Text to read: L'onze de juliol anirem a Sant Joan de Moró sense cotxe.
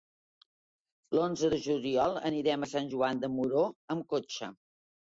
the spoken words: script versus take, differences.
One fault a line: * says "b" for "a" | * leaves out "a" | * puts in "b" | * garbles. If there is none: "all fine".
* says "amb" for "sense"